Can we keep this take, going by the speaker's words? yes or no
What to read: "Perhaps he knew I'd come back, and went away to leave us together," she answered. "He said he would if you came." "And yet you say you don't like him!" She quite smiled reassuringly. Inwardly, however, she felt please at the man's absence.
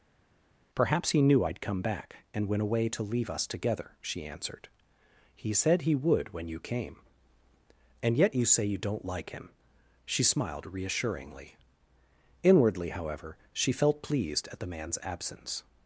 no